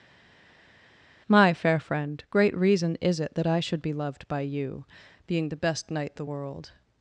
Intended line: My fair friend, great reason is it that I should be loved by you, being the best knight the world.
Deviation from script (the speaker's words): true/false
false